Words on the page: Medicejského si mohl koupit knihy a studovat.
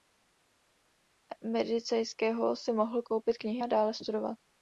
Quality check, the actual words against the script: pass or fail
fail